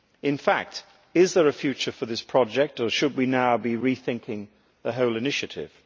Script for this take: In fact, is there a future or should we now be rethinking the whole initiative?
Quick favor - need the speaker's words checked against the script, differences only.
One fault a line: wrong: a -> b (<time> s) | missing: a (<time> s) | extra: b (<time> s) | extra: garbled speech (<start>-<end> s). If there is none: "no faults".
extra: for this project (1.9 s)